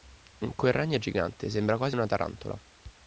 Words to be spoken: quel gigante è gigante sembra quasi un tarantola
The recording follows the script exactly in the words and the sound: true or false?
false